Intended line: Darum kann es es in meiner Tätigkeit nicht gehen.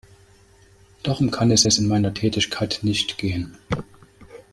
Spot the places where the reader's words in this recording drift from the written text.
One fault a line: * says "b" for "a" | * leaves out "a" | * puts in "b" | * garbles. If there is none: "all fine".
all fine